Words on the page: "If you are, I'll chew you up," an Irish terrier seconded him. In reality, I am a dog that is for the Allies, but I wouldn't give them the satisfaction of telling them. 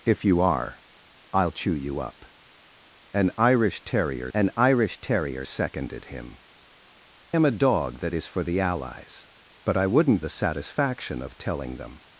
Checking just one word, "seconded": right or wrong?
wrong